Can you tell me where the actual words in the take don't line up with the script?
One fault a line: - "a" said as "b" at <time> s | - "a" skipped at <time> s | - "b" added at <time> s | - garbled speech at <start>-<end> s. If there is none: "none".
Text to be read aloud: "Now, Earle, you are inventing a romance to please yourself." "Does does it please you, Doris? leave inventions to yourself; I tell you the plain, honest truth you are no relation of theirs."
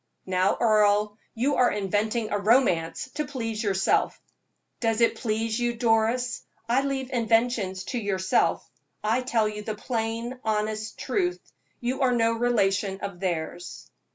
- "does" skipped at 5.0 s
- "I" added at 6.7 s